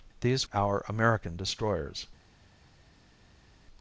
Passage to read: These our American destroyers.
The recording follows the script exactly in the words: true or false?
true